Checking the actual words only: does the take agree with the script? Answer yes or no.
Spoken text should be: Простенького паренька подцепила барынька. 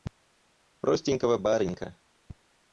no